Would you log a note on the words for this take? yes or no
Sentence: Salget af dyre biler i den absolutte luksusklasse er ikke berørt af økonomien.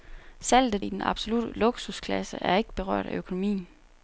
yes